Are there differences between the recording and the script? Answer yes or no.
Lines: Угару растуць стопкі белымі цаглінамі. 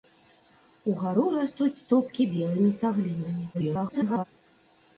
yes